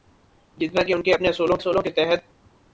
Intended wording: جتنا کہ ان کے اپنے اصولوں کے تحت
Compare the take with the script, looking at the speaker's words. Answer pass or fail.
fail